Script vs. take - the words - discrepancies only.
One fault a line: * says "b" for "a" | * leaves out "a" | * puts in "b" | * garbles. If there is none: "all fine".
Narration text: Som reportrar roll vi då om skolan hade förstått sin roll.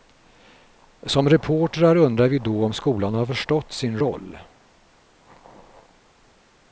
* says "undrar" for "roll"
* says "har" for "hade"